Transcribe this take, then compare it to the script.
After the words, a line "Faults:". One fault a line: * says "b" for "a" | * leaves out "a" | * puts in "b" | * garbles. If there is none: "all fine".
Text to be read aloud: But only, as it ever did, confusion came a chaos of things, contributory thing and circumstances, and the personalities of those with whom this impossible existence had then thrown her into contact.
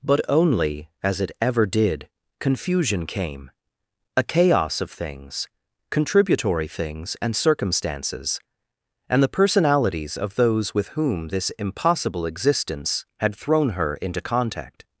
But only, as it ever did, confusion came a chaos of things, contributory things and circumstances, and the personalities of those with whom this impossible existence had thrown her into contact.
Faults:
* says "things" for "thing"
* leaves out "then"